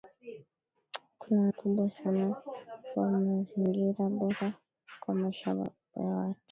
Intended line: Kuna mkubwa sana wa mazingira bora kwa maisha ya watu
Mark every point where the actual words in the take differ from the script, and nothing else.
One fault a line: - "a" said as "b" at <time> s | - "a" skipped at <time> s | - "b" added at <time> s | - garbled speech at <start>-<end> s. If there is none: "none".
none